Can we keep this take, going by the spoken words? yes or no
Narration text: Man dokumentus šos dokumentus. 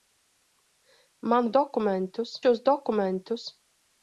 yes